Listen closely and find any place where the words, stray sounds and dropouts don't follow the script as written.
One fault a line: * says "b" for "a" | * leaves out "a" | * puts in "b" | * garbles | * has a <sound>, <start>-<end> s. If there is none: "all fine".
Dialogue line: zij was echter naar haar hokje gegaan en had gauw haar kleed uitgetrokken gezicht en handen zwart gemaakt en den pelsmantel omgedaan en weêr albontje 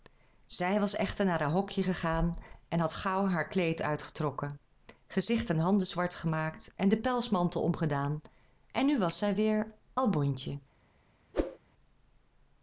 * puts in "nu was zij"
* has a whoosh, 11.3-11.6 s